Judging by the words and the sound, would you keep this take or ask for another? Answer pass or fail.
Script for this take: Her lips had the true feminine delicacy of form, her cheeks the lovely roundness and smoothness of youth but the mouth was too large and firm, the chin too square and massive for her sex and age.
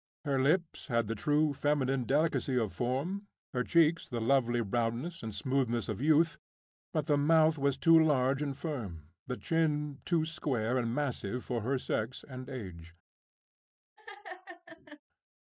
fail